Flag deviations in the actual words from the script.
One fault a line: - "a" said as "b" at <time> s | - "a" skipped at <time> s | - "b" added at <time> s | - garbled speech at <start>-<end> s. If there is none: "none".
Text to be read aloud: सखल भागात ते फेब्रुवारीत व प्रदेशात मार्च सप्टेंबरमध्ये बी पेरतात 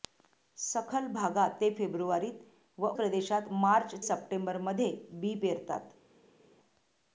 none